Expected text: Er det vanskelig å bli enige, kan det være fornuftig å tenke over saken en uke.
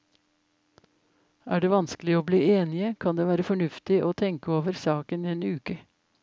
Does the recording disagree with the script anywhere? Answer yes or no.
no